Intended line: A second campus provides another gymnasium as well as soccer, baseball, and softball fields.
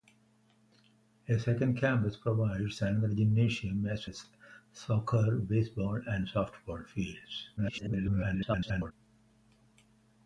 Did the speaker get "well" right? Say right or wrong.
wrong